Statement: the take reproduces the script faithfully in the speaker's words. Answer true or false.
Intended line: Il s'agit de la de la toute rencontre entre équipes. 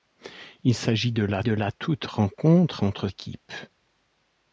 true